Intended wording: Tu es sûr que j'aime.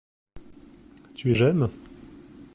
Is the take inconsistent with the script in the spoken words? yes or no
yes